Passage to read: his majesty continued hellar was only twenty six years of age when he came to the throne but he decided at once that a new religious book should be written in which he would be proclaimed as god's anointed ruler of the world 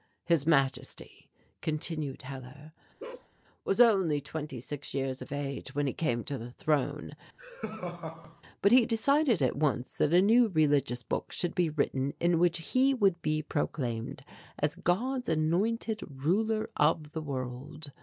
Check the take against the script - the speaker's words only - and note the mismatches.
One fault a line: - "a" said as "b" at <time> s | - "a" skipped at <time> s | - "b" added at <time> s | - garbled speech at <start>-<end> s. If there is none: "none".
none